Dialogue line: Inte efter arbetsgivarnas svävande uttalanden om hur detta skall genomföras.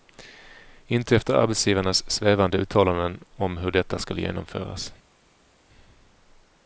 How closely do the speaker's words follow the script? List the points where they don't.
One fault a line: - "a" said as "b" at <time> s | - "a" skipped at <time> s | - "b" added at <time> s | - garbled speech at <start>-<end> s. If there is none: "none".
none